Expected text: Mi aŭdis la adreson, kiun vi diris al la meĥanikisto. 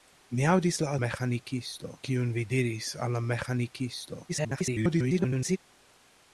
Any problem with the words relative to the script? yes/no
yes